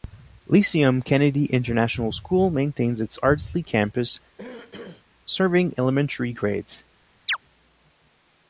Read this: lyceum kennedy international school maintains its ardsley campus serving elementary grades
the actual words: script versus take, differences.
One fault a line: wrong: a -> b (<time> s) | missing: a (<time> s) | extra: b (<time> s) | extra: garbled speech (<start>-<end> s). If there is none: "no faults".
no faults